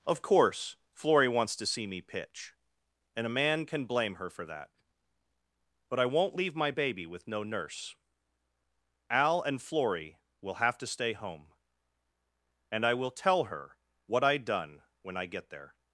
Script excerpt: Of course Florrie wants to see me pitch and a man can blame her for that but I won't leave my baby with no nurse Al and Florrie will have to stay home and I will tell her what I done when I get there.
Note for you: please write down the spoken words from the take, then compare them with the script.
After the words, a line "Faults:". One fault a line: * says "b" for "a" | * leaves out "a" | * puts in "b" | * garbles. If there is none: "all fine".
Of course Florrie wants to see me pitch and a man can blame her for that but I won't leave my baby with no nurse Al and Florrie will have to stay home and I will tell her what I done when I get there.
Faults:
all fine